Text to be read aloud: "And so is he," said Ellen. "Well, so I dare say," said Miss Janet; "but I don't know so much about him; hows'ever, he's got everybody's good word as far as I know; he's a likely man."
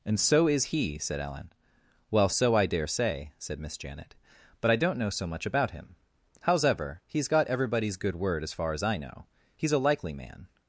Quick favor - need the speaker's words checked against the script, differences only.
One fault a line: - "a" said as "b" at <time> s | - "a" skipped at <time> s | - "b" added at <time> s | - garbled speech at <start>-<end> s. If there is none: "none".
none